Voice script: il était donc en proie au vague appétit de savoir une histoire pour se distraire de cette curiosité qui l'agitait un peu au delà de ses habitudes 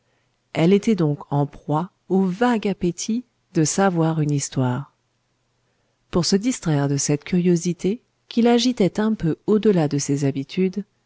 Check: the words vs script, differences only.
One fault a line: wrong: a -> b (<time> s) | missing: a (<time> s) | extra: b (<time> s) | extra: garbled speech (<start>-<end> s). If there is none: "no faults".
wrong: il -> elle (0.5 s)